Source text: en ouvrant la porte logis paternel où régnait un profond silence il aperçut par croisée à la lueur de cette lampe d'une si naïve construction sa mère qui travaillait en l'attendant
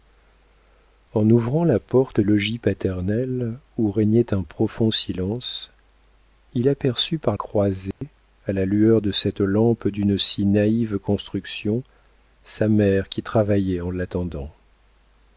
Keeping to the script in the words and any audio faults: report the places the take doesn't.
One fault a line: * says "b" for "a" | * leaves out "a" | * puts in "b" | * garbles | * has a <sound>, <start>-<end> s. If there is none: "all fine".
* has a dropout, 7.9-8.0 s